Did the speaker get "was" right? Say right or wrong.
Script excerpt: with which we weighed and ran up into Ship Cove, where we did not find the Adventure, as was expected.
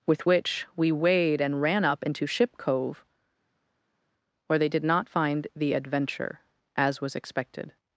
right